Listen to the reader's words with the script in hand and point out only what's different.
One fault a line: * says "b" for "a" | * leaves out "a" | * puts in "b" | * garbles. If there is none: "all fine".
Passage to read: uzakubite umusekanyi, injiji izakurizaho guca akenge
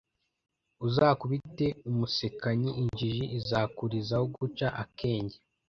all fine